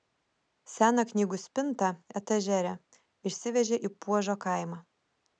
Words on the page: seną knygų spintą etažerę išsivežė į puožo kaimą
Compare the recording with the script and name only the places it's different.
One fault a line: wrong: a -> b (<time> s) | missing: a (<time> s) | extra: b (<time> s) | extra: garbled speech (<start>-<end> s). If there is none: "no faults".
no faults